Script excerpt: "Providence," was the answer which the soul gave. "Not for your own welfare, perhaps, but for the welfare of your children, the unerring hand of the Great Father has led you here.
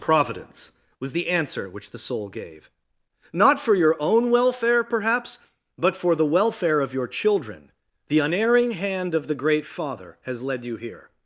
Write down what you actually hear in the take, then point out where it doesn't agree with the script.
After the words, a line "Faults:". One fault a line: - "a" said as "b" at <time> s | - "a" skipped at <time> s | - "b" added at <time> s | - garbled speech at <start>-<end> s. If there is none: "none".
"Providence," was the answer which the soul gave. "Not for your own welfare, perhaps, but for the welfare of your children, the unerring hand of the Great Father has led you here.
Faults:
none